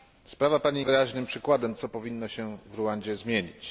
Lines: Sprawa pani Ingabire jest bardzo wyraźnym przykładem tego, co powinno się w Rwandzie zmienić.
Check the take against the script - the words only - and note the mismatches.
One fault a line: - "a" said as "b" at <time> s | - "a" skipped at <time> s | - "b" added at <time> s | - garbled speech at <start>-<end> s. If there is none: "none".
- "Ingabire jest bardzo" skipped at 0.8 s
- "tego" skipped at 1.8 s